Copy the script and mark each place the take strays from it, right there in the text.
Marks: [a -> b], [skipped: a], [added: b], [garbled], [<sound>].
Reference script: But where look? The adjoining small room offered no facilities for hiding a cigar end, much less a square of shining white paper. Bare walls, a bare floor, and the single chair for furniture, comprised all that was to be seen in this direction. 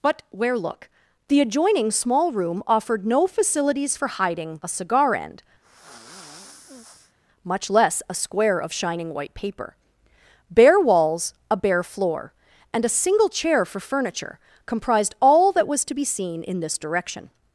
But where look? The adjoining small room offered no facilities for hiding a cigar end, [sigh] much less a square of shining white paper. Bare walls, a bare floor, and [the -> a] single chair for furniture, comprised all that was to be seen in this direction.